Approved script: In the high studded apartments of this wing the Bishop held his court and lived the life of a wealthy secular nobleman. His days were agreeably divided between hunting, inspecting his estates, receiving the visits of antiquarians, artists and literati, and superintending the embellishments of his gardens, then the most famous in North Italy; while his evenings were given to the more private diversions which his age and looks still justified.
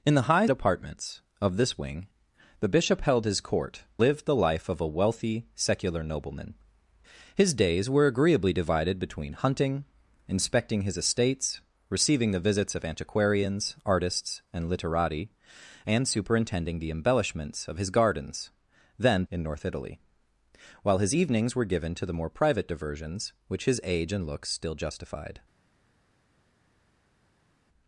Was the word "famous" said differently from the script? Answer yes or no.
yes